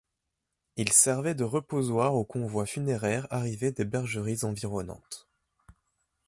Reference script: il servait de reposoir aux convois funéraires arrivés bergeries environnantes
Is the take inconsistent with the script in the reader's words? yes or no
yes